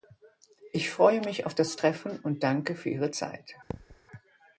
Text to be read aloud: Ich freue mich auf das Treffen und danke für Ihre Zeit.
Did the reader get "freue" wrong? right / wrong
right